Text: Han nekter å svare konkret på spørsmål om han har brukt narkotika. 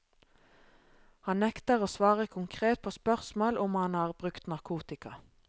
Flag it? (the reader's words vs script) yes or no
no